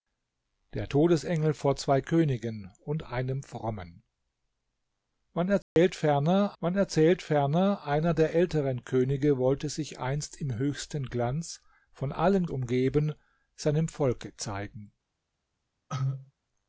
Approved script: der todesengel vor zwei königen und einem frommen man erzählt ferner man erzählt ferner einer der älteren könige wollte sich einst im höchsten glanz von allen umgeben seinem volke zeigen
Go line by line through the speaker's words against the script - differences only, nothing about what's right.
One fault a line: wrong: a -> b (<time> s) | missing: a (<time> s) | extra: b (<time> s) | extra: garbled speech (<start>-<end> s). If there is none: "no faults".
no faults